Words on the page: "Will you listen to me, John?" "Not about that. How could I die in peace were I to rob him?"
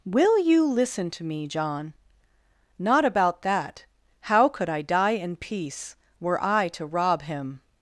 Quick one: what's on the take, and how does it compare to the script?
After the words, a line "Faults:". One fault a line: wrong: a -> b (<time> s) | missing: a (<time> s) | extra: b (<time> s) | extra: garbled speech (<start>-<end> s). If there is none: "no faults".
"Will you listen to me, John?" "Not about that. How could I die in peace were I to rob him?"
Faults:
no faults